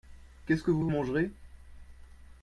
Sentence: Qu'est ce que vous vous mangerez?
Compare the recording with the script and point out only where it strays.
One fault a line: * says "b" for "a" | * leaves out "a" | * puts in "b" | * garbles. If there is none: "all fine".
all fine